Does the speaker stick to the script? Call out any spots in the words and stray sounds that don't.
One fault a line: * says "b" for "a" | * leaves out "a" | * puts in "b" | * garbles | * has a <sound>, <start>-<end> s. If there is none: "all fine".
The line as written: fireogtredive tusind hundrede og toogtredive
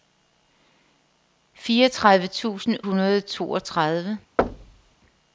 * has a thud, 4.4-5.0 s